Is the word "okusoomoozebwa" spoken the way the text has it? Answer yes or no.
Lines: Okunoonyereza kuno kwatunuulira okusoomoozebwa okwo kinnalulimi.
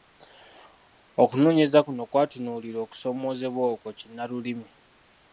yes